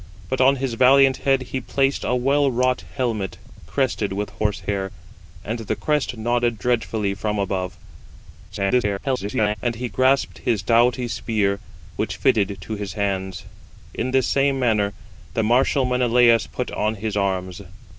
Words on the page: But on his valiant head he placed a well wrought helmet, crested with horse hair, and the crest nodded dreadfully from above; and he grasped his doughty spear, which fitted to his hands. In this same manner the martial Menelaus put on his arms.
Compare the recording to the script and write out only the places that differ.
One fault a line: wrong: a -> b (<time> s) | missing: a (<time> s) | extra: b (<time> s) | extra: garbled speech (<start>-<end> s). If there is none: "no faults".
extra: garbled speech (8.5-9.6 s)